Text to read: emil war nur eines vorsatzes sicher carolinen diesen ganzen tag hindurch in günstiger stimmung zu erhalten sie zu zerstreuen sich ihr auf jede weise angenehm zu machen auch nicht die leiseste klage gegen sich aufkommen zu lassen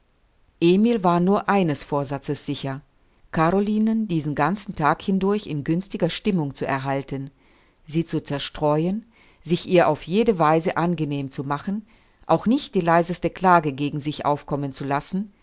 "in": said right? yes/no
yes